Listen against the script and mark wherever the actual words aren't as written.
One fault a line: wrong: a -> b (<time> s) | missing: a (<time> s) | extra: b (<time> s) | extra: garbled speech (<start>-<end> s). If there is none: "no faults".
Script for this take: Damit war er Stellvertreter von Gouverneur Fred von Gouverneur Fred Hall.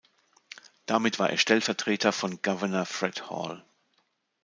missing: von Gouverneur Fred (3.3 s)